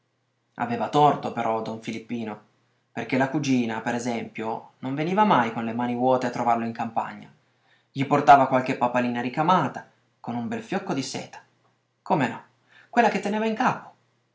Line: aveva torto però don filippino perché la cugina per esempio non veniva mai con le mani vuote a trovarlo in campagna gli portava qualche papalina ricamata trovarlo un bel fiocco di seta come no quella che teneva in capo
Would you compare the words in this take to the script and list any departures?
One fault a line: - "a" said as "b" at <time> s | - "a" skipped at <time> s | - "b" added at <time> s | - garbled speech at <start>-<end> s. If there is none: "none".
- "trovarlo" said as "con" at 10.2 s